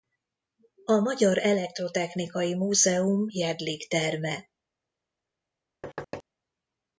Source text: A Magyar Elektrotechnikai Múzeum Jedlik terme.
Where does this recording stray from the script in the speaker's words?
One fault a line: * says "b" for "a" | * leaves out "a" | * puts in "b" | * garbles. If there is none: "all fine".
all fine